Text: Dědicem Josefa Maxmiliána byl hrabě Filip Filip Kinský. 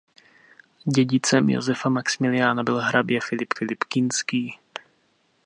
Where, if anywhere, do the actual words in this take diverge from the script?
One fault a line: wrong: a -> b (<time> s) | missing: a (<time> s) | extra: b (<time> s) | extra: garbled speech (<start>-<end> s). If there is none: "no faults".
no faults